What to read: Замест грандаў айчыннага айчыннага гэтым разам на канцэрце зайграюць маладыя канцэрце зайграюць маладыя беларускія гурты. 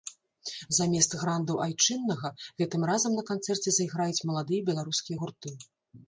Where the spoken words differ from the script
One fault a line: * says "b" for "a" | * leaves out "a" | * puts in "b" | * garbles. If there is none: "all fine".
* leaves out "айчыннага"
* leaves out "канцэрце зайграюць маладыя"